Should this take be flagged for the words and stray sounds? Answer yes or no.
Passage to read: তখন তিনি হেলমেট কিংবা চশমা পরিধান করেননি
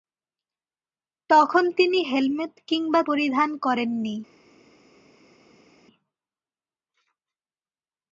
yes